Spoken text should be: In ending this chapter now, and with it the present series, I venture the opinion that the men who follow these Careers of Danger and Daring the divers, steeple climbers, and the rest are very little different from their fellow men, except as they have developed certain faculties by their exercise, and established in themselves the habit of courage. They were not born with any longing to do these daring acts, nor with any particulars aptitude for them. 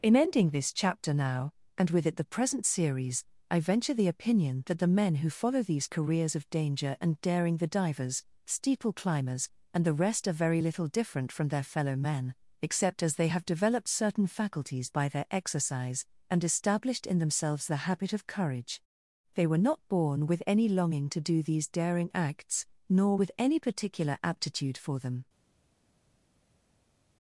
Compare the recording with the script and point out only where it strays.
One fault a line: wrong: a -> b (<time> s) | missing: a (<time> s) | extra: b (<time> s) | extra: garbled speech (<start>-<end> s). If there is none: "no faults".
wrong: particulars -> particular (23.6 s)